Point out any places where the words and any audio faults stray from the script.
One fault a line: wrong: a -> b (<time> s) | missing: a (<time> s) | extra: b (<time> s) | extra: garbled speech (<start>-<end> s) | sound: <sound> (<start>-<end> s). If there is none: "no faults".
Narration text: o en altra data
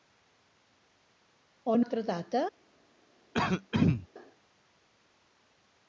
sound: throat clearing (3.3-4.1 s)